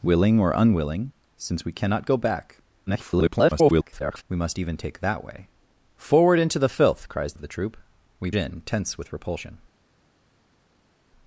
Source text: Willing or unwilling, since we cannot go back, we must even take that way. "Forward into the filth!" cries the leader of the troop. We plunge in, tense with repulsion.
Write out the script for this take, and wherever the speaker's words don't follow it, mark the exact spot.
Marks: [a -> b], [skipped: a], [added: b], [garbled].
Willing or unwilling, since we cannot go back, [garbled] we must even take that way. "Forward into the filth!" cries [skipped: the leader] of the troop. We [skipped: plunge] in, tense with repulsion.